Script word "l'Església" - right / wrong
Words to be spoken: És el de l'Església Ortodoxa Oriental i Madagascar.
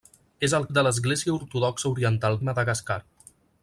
right